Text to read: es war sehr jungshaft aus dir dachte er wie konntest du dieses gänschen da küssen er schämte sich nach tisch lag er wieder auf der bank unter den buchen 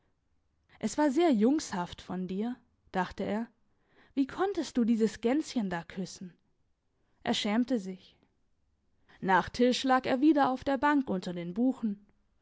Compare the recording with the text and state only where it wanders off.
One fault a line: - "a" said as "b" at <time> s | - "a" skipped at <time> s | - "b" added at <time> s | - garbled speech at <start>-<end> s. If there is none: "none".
- "aus" said as "von" at 2.0 s